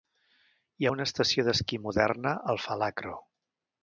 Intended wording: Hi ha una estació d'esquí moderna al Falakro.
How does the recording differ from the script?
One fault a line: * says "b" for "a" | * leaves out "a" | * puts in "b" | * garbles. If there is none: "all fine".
all fine